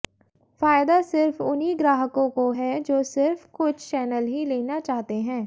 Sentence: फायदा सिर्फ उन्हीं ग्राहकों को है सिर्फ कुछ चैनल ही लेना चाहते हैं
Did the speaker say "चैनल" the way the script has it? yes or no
yes